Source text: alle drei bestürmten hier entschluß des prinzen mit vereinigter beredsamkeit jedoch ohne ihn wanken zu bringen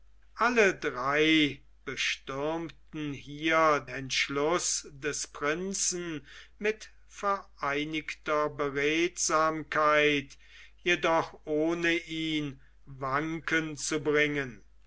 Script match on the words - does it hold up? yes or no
yes